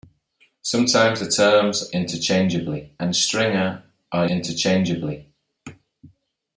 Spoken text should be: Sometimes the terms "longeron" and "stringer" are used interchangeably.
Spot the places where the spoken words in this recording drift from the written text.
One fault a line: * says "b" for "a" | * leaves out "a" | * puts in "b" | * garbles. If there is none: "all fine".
* says "interchangeably" for "longeron"
* leaves out "used"